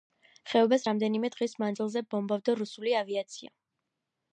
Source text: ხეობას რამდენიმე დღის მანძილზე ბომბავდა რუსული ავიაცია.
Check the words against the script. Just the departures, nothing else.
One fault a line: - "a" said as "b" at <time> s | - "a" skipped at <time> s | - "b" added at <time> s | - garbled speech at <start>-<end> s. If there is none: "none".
none